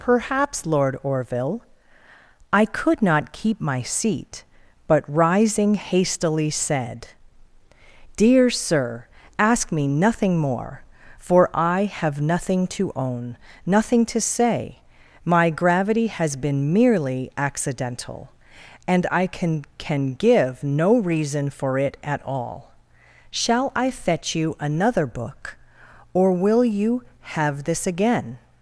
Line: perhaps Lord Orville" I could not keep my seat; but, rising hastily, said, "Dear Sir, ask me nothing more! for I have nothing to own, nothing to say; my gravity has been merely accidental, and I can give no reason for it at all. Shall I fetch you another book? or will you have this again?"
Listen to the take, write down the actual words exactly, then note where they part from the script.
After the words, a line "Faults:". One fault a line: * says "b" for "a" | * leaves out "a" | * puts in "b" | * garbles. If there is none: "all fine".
perhaps Lord Orville" I could not keep my seat; but, rising hastily, said, "Dear Sir, ask me nothing more! for I have nothing to own, nothing to say; my gravity has been merely accidental, and I can can give no reason for it at all. Shall I fetch you another book? or will you have this again?"
Faults:
* puts in "can"